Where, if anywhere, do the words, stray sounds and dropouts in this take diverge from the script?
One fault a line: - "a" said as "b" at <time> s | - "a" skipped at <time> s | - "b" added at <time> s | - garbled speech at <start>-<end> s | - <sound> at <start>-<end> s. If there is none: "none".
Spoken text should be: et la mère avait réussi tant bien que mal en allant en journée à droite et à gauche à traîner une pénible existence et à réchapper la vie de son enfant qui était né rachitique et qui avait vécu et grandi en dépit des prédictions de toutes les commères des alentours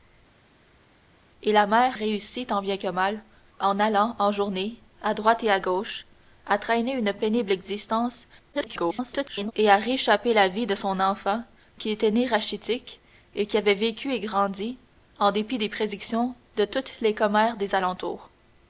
- "avait" skipped at 2.0 s
- garbled speech at 8.5-9.5 s